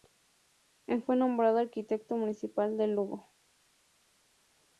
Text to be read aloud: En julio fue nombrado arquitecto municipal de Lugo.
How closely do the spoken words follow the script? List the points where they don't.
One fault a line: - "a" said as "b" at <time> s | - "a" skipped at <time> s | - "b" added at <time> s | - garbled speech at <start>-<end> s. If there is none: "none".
- "julio" skipped at 1.0 s